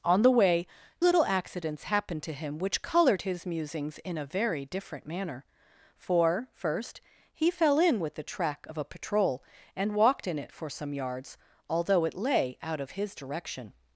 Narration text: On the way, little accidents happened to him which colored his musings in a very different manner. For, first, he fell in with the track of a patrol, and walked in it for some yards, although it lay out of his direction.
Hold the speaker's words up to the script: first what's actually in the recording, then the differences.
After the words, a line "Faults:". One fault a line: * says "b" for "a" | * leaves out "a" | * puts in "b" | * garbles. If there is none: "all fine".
On the way, little accidents happened to him which colored his musings in a very different manner. For, first, he fell in with the track of a patrol, and walked in it for some yards, although it lay out of his direction.
Faults:
all fine